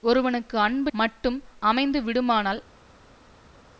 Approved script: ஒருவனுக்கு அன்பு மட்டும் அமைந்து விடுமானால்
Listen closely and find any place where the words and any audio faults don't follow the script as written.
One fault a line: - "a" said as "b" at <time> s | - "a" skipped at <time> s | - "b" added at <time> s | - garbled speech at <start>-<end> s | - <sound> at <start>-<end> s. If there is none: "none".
none